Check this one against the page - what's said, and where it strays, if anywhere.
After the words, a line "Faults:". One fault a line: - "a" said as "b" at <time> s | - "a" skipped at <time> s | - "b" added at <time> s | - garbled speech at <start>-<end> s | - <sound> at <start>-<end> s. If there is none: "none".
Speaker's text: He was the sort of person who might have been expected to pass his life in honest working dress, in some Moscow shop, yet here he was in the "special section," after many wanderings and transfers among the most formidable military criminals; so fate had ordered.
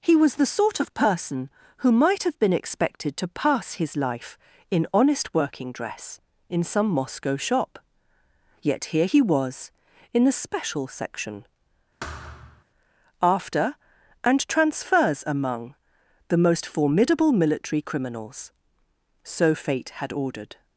He was the sort of person who might have been expected to pass his life in honest working dress, in some Moscow shop, yet here he was in the "special section," after and transfers among the most formidable military criminals; so fate had ordered.
Faults:
- thud at 12.0-12.6 s
- "many wanderings" skipped at 13.7 s